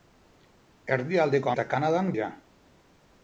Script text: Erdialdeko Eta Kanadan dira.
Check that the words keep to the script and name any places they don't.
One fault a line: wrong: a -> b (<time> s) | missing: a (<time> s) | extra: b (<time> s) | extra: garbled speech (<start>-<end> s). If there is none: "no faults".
no faults